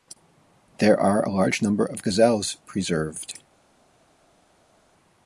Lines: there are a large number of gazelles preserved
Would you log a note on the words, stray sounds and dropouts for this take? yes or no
no